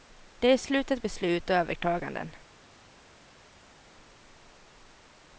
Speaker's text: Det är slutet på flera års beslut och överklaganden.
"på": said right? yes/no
no